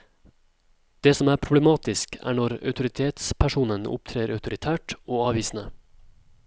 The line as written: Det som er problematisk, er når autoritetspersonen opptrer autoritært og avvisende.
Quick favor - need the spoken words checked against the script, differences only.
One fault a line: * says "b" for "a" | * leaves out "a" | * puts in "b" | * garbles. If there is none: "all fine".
all fine